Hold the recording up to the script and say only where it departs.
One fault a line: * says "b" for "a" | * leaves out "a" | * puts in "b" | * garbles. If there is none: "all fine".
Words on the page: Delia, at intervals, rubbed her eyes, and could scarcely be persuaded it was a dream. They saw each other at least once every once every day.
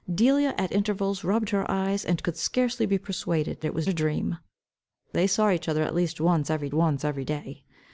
all fine